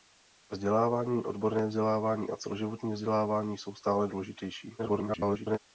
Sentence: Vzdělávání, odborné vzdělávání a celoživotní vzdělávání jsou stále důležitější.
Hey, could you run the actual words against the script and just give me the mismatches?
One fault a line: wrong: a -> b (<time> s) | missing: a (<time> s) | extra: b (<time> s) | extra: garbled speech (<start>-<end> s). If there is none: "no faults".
extra: garbled speech (4.8-5.6 s)